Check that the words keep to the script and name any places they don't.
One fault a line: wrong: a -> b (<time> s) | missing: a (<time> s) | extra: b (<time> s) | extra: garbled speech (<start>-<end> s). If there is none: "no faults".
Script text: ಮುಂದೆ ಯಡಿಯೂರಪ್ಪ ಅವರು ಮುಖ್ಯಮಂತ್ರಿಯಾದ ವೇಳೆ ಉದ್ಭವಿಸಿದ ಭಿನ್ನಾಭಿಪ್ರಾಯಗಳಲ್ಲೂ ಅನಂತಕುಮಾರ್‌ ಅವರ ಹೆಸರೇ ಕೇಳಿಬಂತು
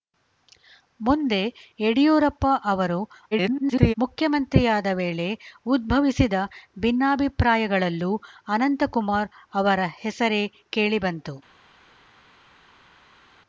extra: garbled speech (3.3-3.9 s)